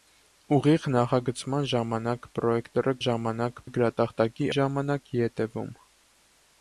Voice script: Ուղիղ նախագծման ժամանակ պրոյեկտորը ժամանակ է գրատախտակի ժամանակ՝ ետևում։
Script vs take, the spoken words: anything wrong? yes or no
no